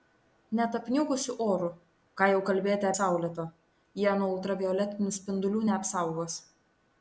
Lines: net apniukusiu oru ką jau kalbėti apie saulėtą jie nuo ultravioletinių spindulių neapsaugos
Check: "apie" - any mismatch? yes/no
yes